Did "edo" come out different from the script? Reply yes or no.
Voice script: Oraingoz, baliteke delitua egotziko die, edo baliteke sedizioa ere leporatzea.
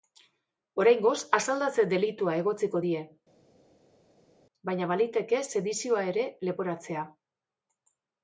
yes